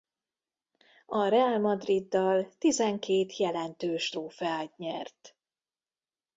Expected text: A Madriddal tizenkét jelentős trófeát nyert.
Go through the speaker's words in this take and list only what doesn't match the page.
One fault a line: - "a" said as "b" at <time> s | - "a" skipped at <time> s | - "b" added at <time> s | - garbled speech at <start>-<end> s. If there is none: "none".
- "Real" added at 1.3 s